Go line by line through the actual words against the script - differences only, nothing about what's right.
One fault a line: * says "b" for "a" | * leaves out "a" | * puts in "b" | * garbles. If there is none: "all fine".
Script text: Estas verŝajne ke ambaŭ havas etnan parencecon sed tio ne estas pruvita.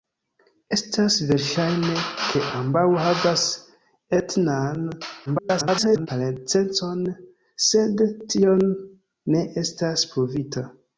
* garbles